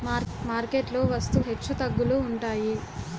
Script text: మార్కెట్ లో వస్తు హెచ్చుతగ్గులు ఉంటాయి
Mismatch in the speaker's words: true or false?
false